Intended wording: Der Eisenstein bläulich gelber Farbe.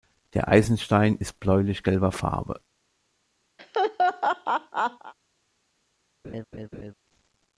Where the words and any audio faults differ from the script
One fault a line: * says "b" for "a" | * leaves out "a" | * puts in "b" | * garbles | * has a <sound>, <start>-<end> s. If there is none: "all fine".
* puts in "ist"
* has a laugh, 3.6-5.1 s
* has a laugh, 6.2-6.9 s